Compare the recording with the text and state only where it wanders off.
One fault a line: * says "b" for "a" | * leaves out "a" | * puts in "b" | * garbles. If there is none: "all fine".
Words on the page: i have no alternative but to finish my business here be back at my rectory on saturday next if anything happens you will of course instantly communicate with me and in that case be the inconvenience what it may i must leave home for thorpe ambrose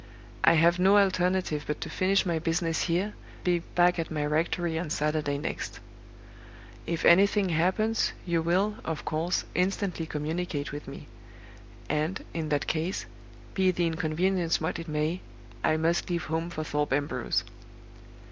all fine